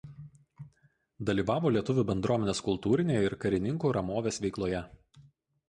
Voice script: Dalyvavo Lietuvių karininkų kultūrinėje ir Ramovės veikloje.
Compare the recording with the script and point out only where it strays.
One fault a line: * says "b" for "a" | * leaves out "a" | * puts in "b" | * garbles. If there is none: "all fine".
* says "bendruomenės" for "karininkų"
* puts in "karininkų"